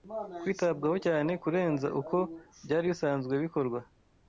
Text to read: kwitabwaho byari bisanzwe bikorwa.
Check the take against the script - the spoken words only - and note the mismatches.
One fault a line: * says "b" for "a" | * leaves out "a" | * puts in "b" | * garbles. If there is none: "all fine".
* puts in "cyane kurenza uko"